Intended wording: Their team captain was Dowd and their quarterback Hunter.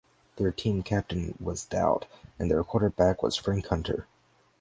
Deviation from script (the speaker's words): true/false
true